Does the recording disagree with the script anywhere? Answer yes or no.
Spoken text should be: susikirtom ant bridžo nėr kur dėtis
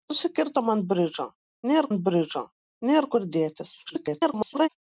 yes